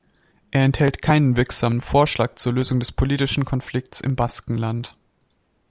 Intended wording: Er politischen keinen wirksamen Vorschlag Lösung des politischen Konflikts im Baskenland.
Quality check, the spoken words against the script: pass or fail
fail